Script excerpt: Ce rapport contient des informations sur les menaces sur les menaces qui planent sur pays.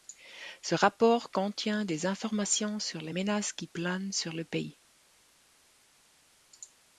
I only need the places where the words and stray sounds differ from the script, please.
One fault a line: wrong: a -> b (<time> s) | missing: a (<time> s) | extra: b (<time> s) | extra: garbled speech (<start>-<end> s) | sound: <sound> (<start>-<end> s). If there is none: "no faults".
missing: sur les menaces (3.5 s)
extra: le (4.3 s)